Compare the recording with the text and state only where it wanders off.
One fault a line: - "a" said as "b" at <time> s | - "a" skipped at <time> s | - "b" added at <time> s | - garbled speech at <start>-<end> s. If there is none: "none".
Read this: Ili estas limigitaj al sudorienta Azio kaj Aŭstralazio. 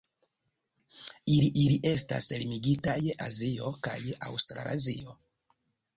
- "ili" added at 1.6 s
- "al sudorienta" skipped at 3.0 s